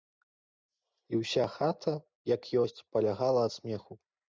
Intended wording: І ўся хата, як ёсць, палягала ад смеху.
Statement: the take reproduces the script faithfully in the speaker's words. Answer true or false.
true